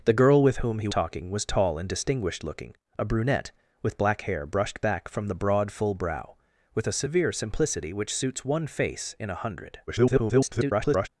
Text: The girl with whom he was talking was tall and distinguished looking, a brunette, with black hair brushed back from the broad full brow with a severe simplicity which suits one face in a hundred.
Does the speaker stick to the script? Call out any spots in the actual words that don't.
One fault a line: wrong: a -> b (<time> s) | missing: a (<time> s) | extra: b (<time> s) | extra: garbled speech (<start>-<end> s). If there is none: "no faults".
missing: was (0.9 s)
extra: garbled speech (9.9-11.1 s)